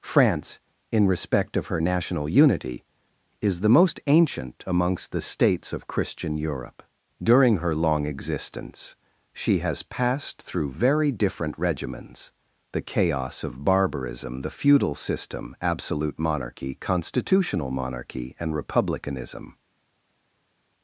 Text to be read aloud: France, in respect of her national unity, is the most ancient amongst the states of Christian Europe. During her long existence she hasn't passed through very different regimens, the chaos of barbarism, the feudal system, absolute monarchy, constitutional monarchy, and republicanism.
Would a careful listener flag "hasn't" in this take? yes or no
yes